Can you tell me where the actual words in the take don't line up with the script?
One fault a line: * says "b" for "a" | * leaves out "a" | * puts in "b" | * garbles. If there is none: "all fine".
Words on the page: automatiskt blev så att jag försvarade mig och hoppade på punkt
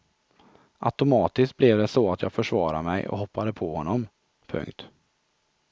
* puts in "det"
* puts in "honom"